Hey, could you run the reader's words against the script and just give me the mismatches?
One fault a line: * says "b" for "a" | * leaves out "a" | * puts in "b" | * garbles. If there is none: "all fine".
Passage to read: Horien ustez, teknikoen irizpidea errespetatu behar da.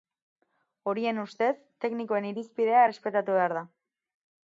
all fine